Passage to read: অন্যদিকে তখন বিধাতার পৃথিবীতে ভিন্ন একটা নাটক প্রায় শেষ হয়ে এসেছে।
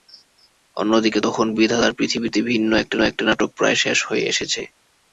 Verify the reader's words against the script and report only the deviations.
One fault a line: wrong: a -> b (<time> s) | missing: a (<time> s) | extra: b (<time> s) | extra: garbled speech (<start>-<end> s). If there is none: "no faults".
extra: একটা (3.0 s)